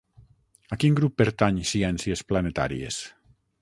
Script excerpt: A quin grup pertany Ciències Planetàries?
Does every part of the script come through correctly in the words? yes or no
yes